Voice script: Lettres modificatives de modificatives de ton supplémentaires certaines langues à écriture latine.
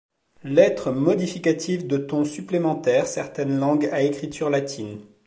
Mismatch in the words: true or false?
true